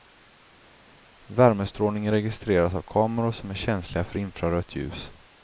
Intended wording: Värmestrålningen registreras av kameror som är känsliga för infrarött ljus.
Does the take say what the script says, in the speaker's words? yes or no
yes